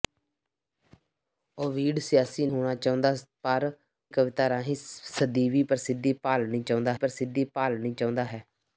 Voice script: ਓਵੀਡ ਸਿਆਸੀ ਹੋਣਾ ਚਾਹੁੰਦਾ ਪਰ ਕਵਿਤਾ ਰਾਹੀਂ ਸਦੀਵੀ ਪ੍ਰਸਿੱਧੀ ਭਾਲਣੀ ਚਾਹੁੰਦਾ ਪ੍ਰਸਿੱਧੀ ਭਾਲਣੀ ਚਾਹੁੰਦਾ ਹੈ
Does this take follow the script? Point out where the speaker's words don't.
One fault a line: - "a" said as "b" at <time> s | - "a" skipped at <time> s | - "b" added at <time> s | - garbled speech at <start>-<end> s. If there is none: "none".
none